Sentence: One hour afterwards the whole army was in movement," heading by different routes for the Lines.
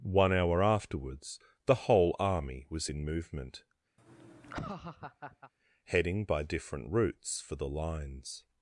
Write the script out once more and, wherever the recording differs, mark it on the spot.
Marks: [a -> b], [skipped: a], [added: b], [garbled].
One hour afterwards the whole army was in movement," heading by different routes for the Lines.